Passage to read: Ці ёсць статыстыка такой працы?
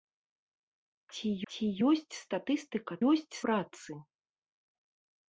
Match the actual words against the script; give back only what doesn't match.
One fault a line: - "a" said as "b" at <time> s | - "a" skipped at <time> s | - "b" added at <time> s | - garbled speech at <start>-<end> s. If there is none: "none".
- "ці" added at 1.5 s
- "такой" said as "ёсць" at 3.1 s